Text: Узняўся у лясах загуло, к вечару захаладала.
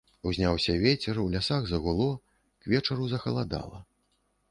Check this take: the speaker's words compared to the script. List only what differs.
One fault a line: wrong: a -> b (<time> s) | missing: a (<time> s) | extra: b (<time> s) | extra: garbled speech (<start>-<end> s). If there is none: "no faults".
extra: вецер (0.8 s)